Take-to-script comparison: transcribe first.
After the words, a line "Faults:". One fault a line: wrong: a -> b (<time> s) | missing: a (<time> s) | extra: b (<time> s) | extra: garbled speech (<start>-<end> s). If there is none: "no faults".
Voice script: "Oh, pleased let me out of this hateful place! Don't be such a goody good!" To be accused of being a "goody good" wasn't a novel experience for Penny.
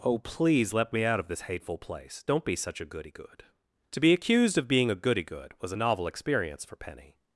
"Oh, please let me out of this hateful place! Don't be such a goody good!" To be accused of being a "goody good" was a novel experience for Penny.
Faults:
wrong: pleased -> please (0.2 s)
wrong: wasn't -> was (5.6 s)